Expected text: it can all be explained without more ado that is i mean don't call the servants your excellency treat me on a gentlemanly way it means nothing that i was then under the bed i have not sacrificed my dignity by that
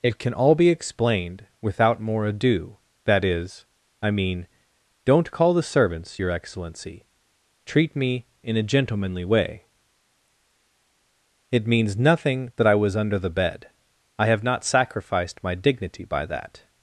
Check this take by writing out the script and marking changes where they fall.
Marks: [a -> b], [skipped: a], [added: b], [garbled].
it can all be explained without more ado that is i mean don't call the servants your excellency treat me [on -> in] a gentlemanly way it means nothing that i was [skipped: then] under the bed i have not sacrificed my dignity by that